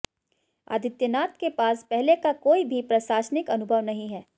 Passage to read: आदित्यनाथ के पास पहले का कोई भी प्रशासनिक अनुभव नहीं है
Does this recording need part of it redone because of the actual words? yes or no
no